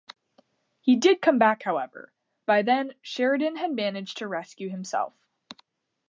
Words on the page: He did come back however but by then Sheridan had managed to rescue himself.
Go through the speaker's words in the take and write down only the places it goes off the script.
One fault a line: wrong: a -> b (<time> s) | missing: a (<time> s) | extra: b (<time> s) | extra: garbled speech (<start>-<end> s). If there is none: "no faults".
missing: but (2.1 s)